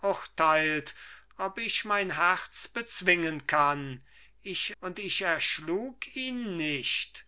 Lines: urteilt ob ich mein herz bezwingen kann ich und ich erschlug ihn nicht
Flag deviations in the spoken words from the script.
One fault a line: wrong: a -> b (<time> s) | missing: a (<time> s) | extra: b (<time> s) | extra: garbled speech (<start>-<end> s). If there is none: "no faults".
no faults